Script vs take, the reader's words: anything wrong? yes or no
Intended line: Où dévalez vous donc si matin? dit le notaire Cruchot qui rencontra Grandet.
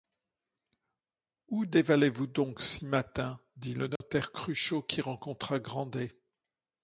no